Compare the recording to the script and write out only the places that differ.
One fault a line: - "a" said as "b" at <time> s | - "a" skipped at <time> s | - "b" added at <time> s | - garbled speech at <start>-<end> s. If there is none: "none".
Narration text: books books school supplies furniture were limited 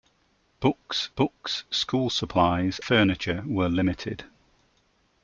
none